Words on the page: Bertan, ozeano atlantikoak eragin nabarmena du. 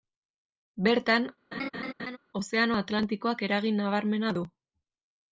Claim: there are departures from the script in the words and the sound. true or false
true